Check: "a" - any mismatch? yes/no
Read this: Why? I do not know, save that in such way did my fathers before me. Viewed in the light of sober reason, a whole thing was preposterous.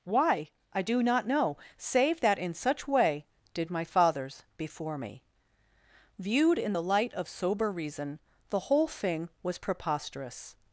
yes